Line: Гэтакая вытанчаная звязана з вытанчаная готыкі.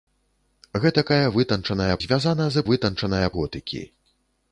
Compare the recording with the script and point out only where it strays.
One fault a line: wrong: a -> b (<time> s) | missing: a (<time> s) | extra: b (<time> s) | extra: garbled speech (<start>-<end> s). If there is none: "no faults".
no faults